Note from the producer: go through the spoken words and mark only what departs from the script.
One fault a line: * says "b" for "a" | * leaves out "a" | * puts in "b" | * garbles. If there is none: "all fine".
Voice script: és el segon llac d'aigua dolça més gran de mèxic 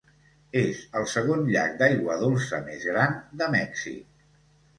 all fine